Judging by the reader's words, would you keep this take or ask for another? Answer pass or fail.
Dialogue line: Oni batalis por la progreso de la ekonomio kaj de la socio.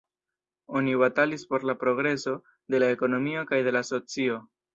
pass